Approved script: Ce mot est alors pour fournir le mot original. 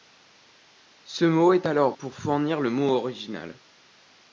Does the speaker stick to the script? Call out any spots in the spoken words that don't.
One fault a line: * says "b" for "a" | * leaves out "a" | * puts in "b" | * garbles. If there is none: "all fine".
all fine